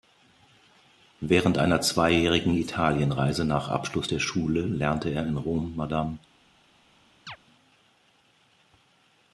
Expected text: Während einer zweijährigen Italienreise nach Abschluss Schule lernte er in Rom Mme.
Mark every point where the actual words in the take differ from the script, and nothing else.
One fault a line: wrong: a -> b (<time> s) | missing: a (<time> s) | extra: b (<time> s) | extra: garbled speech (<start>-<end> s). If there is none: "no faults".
extra: der (4.1 s)